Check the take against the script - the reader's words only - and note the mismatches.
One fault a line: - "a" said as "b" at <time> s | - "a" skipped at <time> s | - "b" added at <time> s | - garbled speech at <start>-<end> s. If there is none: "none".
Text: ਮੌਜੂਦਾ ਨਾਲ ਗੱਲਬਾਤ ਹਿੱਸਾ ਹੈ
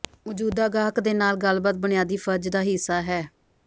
- "ਗਾਹਕ ਦੇ" added at 0.7 s
- "ਬੁਨਿਆਦੀ ਫਰਜ਼ ਦਾ" added at 1.8 s